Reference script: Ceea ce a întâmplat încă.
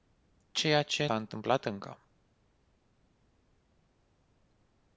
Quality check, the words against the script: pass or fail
pass